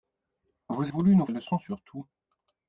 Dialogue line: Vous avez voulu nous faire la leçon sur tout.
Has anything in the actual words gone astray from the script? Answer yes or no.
yes